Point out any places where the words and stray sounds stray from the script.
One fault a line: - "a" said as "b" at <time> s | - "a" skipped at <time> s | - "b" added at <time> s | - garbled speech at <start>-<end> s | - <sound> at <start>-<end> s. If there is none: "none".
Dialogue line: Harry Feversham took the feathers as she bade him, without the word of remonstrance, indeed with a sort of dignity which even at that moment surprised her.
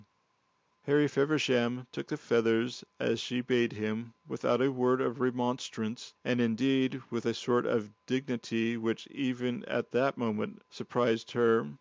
- "the" said as "a" at 4.6 s
- "and" added at 6.2 s